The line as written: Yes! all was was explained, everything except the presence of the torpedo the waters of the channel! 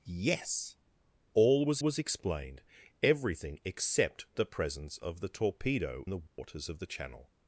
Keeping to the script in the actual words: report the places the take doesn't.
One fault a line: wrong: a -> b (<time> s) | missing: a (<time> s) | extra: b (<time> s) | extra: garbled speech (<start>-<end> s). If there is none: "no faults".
no faults